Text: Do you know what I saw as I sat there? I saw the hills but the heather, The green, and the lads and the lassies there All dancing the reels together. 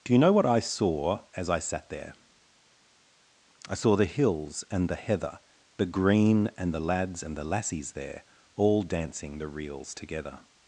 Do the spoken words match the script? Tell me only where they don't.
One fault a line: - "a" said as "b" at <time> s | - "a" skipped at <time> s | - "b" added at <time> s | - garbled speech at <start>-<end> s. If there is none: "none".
- "but" said as "and" at 4.7 s